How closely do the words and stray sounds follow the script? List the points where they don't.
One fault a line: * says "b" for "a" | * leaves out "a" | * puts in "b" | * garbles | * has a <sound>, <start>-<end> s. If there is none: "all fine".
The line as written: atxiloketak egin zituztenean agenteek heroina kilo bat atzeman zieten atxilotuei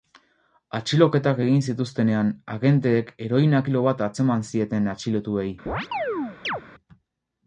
* has a chirp, 5.7-6.6 s